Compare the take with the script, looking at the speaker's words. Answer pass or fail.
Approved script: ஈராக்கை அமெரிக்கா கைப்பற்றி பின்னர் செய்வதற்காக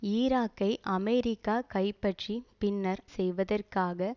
pass